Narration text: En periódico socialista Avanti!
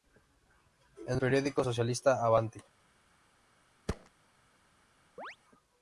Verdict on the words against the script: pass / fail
pass